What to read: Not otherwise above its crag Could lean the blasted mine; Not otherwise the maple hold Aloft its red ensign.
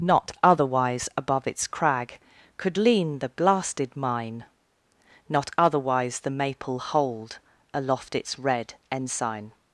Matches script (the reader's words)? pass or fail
pass